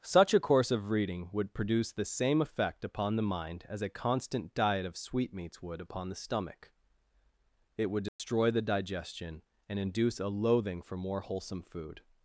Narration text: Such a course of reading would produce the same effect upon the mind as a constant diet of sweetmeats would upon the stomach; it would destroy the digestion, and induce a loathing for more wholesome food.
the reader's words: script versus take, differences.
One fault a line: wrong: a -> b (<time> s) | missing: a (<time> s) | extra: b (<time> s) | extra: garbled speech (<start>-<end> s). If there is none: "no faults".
no faults